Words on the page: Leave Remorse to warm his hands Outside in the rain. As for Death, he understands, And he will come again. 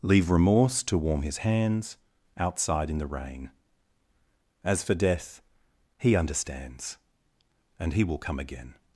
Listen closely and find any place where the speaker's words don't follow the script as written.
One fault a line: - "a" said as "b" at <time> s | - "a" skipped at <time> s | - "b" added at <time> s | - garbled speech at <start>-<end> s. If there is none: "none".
none